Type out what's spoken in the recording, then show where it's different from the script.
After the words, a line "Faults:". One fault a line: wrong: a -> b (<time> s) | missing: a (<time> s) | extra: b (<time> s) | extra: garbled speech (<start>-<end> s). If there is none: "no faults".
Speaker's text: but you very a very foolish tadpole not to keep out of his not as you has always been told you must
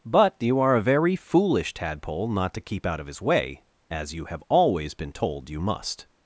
but you are a very foolish tadpole not to keep out of his way as you have always been told you must
Faults:
wrong: very -> are (0.6 s)
wrong: not -> way (3.2 s)
wrong: has -> have (4.2 s)